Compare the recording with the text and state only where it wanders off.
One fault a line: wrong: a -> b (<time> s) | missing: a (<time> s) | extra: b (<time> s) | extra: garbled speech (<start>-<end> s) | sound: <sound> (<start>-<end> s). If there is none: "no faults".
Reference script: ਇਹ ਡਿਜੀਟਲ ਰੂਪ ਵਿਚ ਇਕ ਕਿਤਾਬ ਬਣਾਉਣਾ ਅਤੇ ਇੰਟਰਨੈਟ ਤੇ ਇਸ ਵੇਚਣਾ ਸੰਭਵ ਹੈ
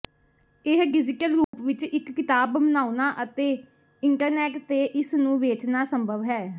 sound: dropout (1.4-1.5 s)
extra: ਨੂੰ (5.1 s)